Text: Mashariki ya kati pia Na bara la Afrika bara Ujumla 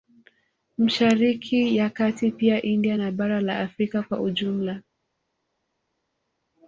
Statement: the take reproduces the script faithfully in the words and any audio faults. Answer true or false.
false